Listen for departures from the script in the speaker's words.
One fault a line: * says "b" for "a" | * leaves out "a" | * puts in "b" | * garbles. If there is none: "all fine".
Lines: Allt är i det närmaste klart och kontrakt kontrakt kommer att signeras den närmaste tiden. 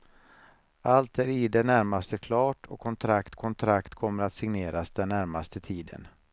all fine